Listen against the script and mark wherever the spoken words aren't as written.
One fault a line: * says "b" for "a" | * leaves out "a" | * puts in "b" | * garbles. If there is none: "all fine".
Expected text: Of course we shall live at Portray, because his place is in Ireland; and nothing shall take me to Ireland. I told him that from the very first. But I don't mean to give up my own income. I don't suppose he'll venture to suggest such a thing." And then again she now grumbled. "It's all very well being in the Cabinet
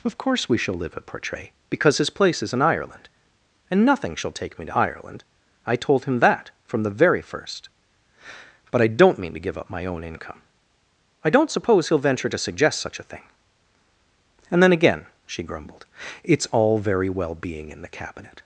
* leaves out "now"